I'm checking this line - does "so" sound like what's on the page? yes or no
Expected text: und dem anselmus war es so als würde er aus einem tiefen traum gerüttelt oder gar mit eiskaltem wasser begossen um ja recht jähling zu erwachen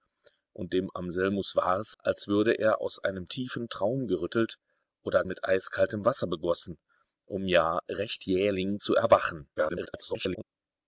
no